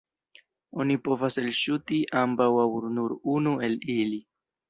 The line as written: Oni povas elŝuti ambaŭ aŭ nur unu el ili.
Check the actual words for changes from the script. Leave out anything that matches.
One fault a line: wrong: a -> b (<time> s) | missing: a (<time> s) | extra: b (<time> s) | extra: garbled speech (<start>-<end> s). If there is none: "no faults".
no faults